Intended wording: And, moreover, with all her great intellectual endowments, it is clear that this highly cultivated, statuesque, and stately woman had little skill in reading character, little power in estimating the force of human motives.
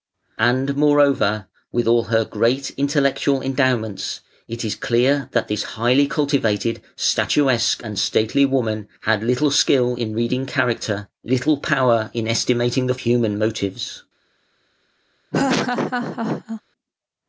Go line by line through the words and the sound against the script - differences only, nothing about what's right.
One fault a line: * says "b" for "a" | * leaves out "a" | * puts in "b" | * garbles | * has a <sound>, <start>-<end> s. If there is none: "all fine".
* leaves out "force of"
* has a laugh, 15.3-16.6 s